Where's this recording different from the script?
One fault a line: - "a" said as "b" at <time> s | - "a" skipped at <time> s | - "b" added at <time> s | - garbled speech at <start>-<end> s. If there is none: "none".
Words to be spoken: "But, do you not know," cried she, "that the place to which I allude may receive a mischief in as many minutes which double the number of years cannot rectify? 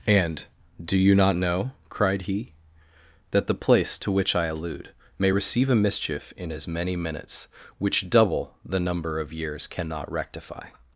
- "But" said as "And" at 0.1 s
- "she" said as "he" at 2.2 s